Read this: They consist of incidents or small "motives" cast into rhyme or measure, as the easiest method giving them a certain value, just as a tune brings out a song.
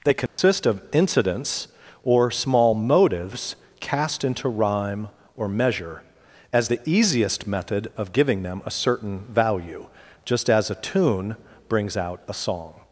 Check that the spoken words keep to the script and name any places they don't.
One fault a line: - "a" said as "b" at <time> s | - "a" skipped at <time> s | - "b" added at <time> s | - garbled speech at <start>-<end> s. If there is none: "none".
- "of" added at 8.0 s